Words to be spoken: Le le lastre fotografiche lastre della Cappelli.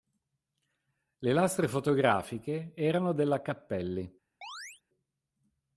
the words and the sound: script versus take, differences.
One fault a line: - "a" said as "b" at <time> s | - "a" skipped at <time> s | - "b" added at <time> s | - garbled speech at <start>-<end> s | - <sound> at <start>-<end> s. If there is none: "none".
- "le" skipped at 1.3 s
- "lastre" said as "erano" at 2.7 s
- chirp at 4.4-4.8 s